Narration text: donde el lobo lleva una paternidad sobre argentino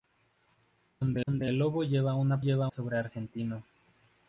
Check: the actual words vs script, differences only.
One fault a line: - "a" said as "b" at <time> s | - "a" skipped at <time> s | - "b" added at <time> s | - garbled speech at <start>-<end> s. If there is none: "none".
- "donde" added at 1.3 s
- "paternidad" said as "lleva" at 2.4 s